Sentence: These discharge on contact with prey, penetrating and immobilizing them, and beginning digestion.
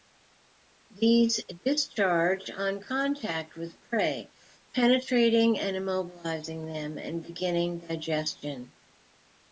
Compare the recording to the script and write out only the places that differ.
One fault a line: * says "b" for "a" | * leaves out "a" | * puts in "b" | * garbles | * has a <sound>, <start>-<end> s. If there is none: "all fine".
all fine